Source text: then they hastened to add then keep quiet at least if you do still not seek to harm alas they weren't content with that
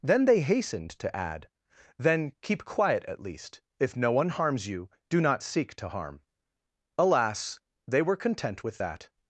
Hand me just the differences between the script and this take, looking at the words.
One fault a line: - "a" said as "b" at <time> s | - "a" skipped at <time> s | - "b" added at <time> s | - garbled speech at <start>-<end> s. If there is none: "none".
- "no one harms" added at 4.0 s
- "still" skipped at 5.2 s
- "weren't" said as "were" at 8.0 s